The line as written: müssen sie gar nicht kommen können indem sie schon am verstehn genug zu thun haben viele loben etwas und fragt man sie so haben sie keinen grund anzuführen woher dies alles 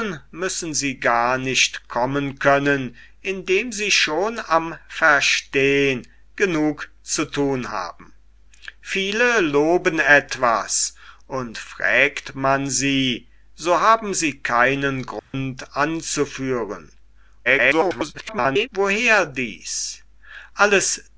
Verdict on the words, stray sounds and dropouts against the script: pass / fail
fail